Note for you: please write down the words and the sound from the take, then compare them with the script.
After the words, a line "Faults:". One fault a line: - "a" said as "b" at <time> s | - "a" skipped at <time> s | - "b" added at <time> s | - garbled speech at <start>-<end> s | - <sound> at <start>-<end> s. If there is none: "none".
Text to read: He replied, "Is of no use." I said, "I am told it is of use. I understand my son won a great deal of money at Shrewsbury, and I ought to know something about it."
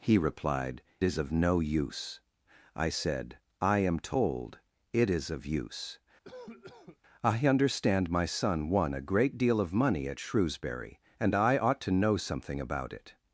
He replied, "Is of no use." I said, "I am told it is of use. I understand my son won a great deal of money at Shrewsbury, and I ought to know something about it."
Faults:
- cough at 6.2-7.0 s